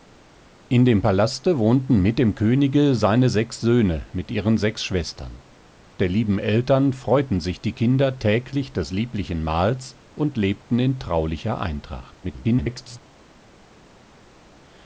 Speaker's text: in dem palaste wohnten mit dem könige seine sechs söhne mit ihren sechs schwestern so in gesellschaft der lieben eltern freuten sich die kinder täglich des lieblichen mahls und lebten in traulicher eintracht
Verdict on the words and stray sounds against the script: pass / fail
fail